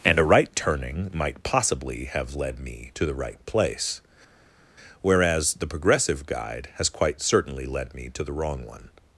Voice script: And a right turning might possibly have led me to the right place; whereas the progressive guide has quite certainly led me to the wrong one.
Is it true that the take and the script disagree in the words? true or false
false